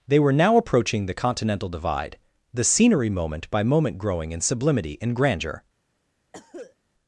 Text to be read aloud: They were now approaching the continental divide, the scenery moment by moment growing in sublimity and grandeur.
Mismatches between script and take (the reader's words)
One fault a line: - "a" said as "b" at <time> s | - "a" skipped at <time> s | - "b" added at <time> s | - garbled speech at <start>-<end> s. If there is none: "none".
none